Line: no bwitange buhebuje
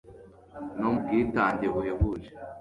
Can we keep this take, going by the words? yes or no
yes